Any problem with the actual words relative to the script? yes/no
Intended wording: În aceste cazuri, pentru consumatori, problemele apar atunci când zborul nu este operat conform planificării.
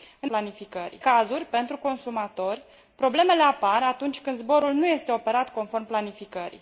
yes